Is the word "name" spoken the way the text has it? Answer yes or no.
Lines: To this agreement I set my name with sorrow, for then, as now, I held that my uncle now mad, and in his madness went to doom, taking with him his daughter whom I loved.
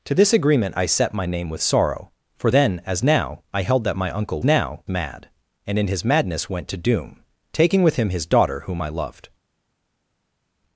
yes